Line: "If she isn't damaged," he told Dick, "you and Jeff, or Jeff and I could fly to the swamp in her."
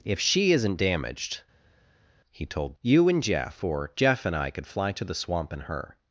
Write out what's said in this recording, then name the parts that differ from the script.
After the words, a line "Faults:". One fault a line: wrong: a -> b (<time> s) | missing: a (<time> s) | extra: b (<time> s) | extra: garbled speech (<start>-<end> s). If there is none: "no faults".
"If she isn't damaged," he told "You and Jeff, or Jeff and I could fly to the swamp in her."
Faults:
missing: Dick (2.8 s)